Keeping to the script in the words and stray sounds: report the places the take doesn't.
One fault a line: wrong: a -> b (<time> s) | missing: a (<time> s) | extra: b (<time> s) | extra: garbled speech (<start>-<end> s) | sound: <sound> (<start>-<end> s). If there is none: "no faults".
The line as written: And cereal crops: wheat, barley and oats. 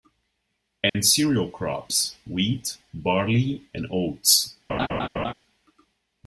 sound: dropout (0.9-0.9 s)
sound: laugh (4.7-5.3 s)